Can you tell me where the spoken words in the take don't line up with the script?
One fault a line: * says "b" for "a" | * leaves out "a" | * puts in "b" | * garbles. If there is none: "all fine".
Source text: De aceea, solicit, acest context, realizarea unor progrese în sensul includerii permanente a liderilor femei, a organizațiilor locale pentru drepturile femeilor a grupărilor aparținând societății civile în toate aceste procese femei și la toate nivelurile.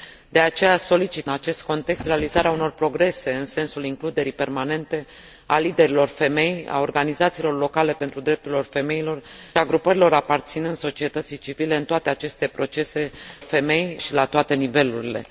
all fine